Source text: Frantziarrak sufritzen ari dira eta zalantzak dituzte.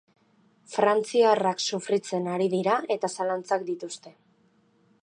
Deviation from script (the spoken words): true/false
false